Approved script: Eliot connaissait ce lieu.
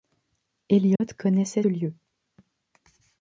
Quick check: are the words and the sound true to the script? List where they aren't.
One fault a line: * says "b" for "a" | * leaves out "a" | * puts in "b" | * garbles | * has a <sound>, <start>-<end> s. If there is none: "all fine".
* has a dropout, 1.0-1.0 s
* leaves out "ce"